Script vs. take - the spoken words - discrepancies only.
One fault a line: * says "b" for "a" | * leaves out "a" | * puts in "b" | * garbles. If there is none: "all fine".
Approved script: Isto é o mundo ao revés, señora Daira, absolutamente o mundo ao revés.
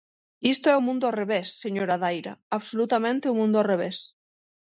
all fine